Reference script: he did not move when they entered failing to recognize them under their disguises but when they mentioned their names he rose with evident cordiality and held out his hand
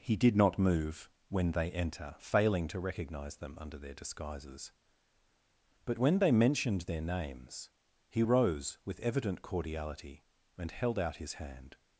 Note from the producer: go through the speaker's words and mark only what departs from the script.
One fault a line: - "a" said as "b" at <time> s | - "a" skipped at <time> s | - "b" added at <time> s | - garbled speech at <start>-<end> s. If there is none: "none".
- "entered" said as "enter" at 1.7 s